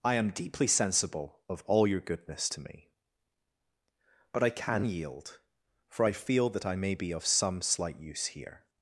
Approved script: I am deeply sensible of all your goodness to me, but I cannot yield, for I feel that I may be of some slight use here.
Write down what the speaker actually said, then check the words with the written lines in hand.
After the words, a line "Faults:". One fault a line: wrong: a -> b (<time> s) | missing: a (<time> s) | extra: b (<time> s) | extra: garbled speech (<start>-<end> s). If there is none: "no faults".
I am deeply sensible of all your goodness to me, but I can yield, for I feel that I may be of some slight use here.
Faults:
wrong: cannot -> can (4.5 s)